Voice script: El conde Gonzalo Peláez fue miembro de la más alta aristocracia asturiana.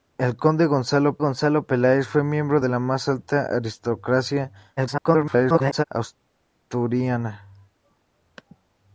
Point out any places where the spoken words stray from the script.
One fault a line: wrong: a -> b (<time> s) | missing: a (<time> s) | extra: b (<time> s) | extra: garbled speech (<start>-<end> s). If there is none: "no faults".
extra: Gonzalo (1.2 s)
extra: garbled speech (4.8-5.8 s)